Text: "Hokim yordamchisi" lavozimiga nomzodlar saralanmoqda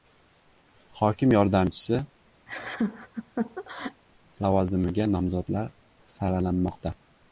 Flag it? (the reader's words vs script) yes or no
no